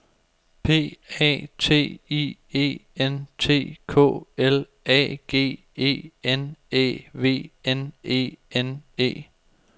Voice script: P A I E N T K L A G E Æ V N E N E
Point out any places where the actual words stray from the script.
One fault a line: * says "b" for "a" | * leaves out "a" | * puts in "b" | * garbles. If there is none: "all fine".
* puts in "T"
* puts in "N"